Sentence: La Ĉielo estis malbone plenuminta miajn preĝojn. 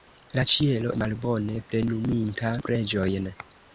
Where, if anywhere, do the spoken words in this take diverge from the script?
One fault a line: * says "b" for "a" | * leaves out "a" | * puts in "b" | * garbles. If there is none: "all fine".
* leaves out "estis"
* leaves out "miajn"